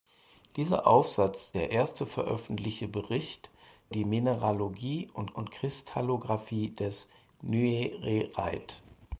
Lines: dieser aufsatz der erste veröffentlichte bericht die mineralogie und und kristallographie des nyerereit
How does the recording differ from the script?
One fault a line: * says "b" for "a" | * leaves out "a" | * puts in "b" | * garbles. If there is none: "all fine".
all fine